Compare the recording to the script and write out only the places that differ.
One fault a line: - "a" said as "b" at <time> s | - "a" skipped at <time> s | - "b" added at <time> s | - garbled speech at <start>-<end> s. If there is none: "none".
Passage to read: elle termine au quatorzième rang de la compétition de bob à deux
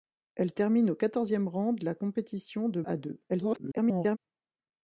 - "bob" skipped at 2.8 s
- garbled speech at 3.3-4.2 s